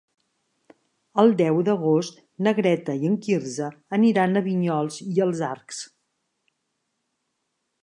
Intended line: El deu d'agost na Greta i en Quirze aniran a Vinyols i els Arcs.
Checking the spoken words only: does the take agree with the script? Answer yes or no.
yes